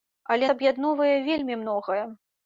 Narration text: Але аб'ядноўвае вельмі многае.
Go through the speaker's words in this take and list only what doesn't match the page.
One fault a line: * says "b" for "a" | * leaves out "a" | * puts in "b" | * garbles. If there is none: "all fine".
all fine